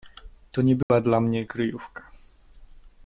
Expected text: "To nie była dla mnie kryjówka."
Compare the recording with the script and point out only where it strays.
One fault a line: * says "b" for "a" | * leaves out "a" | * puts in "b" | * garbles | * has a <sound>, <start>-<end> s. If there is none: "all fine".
* has a dropout, 0.8-0.9 s